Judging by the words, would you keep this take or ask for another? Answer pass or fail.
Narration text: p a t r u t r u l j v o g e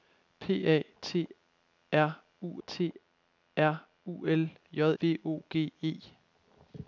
pass